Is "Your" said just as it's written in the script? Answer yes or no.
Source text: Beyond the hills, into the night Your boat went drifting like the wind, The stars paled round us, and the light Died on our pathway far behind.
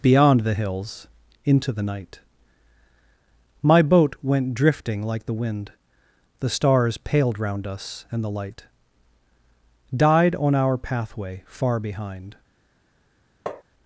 no